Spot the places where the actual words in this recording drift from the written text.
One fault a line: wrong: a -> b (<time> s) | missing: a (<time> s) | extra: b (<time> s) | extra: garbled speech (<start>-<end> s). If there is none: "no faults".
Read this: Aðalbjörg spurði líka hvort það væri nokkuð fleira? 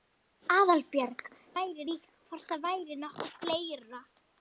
wrong: spurði -> væri (1.6 s)